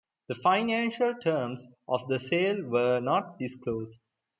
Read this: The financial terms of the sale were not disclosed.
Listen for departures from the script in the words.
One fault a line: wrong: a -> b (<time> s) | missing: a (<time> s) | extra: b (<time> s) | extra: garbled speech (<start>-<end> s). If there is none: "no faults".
no faults